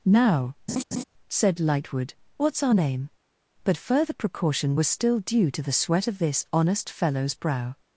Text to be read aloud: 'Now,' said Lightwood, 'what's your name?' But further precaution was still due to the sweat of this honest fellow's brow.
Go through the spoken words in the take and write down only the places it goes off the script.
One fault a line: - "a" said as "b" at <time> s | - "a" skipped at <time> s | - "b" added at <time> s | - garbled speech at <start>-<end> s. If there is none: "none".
- "your" said as "our" at 2.6 s